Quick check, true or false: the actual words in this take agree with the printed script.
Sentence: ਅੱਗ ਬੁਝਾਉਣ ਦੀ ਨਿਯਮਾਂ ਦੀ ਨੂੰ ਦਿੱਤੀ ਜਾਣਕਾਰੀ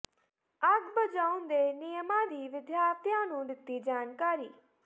false